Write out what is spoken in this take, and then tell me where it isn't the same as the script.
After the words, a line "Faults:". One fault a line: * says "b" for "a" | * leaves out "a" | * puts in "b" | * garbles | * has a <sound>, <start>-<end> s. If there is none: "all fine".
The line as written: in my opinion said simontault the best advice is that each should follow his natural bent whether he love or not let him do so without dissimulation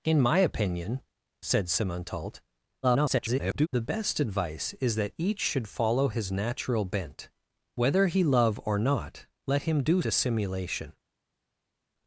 in my opinion said simontault [garbled] the best advice is that each should follow his natural bent whether he love or not let him do dissimulation
Faults:
* garbles
* leaves out "so without"